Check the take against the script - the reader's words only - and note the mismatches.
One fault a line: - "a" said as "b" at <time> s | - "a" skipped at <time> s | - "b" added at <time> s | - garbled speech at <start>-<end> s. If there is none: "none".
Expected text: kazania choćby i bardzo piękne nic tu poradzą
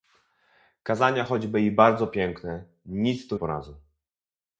none